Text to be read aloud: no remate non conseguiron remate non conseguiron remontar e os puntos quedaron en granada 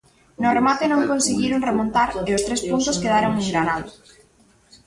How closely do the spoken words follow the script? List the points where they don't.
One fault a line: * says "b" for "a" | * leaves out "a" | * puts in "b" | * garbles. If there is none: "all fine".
* leaves out "remate non conseguiron"
* puts in "tres"